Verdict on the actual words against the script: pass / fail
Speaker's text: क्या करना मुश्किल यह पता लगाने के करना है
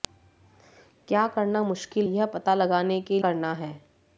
pass